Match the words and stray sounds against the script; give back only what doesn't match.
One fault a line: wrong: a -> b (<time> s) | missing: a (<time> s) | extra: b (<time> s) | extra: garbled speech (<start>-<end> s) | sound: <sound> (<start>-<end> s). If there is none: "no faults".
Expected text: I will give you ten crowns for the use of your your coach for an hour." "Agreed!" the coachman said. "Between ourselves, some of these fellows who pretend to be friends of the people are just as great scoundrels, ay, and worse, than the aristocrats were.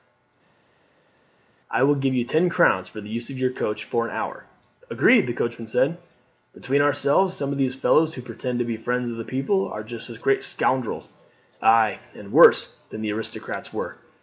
missing: your (3.5 s)